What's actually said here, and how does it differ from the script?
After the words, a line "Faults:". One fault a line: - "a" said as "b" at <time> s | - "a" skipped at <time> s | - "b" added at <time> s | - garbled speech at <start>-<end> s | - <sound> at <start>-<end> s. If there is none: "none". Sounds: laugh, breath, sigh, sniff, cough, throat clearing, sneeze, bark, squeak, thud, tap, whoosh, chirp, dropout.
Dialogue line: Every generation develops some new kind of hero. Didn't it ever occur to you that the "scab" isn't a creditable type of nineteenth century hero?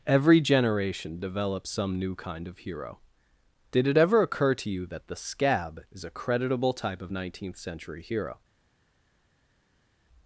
Every generation develops some new kind of hero. Did it ever occur to you that the "scab" is a creditable type of nineteenth century hero?
Faults:
- "Didn't" said as "Did" at 3.7 s
- "isn't" said as "is" at 5.9 s